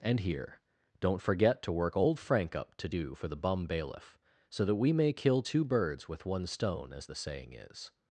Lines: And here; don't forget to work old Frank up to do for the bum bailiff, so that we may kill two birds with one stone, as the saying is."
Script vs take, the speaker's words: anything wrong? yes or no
no